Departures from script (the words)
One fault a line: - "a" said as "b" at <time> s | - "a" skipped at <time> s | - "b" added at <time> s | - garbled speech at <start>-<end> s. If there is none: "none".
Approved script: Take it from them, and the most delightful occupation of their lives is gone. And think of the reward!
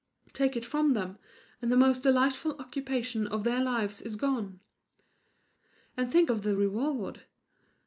none